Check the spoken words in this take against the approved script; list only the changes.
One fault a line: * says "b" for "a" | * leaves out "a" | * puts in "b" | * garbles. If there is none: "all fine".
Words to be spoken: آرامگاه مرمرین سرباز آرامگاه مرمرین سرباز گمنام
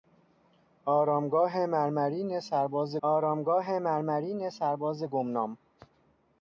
all fine